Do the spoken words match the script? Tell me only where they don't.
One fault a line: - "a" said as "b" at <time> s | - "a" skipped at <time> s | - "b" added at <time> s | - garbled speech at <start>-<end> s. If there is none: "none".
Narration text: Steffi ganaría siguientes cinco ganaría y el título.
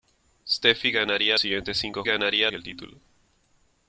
none